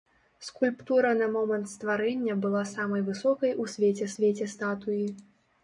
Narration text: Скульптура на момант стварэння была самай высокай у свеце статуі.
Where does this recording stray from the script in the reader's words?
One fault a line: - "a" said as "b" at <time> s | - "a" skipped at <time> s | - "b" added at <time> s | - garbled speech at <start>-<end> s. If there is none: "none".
- "свеце" added at 4.2 s